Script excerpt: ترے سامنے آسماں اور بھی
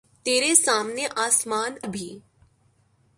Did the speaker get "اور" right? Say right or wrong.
wrong